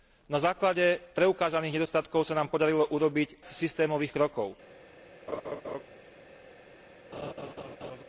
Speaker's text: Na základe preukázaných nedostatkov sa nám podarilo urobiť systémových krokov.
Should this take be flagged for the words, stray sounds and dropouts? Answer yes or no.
yes